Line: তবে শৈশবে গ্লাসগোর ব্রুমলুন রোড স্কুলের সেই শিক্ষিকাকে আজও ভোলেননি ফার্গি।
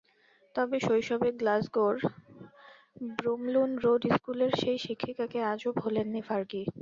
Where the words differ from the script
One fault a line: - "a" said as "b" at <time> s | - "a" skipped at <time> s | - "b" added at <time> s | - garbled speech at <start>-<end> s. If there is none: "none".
none